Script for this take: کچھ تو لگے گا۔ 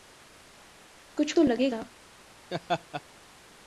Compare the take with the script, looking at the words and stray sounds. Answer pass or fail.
fail